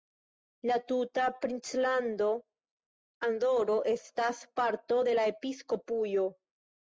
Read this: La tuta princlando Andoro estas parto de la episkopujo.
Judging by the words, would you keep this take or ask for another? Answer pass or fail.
pass